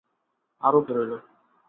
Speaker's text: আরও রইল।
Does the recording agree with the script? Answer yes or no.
yes